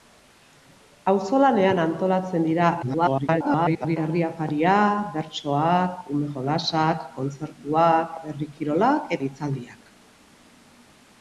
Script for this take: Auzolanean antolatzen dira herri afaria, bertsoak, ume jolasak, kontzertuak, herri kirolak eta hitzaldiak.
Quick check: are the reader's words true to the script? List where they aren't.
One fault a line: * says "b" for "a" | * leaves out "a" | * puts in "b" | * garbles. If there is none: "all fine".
* garbles
* leaves out "eta"